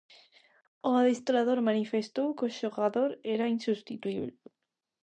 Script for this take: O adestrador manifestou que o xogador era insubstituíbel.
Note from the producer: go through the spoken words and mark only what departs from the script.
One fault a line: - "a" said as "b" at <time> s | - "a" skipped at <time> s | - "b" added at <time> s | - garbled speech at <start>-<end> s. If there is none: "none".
none